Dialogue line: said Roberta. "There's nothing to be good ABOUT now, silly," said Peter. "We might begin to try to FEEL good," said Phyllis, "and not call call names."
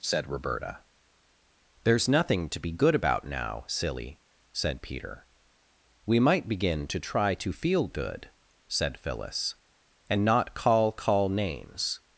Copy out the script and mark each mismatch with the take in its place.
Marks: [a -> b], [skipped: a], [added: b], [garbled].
said Roberta. "There's nothing to be good ABOUT now, silly," said Peter. "We might begin to try to FEEL good," said Phyllis, "and not call call names."